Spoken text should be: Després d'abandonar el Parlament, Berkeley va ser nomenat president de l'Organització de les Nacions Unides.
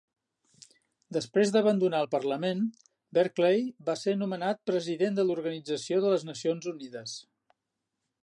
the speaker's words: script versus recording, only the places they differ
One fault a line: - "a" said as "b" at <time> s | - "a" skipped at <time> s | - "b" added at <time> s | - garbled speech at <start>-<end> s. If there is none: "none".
none